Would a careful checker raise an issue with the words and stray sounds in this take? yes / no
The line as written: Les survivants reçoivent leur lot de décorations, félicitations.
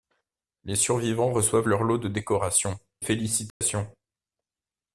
yes